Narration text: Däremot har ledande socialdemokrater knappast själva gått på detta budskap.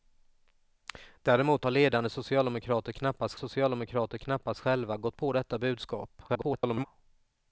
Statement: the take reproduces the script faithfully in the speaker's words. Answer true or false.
false